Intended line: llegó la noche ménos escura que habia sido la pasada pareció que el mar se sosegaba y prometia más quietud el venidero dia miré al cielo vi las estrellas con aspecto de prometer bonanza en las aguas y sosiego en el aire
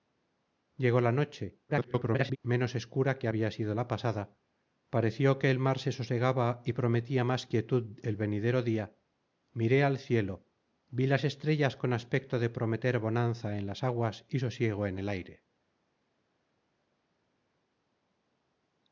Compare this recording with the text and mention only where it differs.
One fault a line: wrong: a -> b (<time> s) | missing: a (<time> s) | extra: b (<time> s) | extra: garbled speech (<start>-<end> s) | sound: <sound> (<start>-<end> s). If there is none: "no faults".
extra: garbled speech (1.7-2.4 s)